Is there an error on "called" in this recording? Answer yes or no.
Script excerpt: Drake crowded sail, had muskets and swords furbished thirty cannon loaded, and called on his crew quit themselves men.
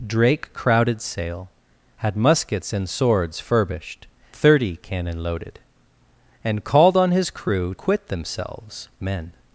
no